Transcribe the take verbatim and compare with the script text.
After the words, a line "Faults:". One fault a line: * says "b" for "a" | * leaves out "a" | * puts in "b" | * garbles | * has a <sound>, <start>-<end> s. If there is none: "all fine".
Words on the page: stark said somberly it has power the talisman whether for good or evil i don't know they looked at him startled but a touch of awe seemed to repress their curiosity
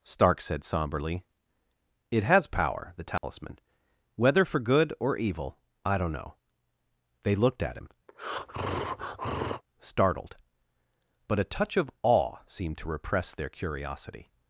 stark said somberly it has power the talisman whether for good or evil i don't know they looked at him startled but a touch of awe seemed to repress their curiosity
Faults:
* has a dropout, 3.2-3.2 s
* has a breath, 8.1-9.6 s